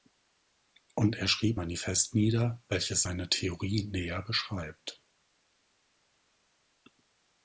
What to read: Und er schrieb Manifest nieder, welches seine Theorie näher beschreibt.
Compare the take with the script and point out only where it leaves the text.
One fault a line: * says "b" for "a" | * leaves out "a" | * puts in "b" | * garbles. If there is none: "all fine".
all fine